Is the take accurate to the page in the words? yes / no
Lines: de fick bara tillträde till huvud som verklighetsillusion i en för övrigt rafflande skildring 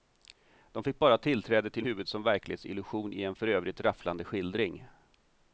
yes